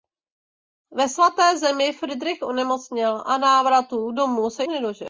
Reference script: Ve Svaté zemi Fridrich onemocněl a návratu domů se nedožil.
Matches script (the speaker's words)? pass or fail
pass